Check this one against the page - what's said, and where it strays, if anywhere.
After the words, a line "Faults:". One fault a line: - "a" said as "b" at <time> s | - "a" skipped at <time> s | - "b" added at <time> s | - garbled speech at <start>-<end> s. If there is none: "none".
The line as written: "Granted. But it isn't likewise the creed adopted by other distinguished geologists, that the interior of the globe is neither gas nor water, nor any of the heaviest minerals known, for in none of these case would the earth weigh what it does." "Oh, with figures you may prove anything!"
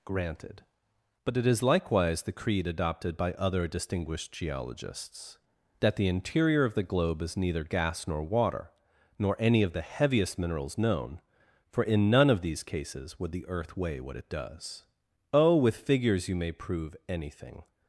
"Granted. But it is likewise the creed adopted by other distinguished geologists, that the interior of the globe is neither gas nor water, nor any of the heaviest minerals known, for in none of these cases would the earth weigh what it does." "Oh, with figures you may prove anything!"
Faults:
- "isn't" said as "is" at 1.4 s
- "case" said as "cases" at 12.6 s